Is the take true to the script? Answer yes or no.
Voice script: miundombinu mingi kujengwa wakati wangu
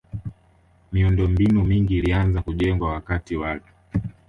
no